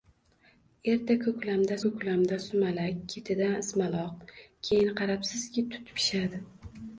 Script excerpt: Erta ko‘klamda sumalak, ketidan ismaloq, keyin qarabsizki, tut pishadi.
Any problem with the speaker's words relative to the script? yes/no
yes